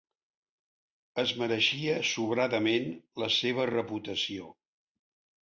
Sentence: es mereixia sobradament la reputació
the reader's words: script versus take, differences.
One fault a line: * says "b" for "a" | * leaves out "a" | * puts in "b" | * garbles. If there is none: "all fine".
* puts in "seva"